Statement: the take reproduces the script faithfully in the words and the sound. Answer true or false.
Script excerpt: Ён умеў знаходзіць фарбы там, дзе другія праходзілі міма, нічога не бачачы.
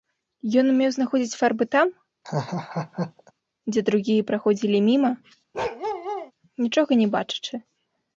false